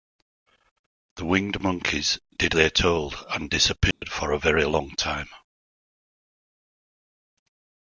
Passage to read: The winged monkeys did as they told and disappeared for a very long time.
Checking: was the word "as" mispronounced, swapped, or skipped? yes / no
yes